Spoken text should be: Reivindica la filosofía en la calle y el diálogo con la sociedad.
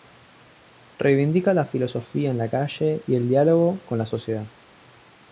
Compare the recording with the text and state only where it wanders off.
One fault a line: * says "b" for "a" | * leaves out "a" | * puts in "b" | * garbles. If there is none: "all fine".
all fine